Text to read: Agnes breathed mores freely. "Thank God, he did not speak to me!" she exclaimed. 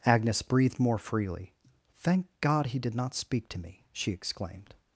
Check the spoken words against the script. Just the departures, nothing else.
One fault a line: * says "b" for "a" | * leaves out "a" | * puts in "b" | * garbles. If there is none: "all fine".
* says "more" for "mores"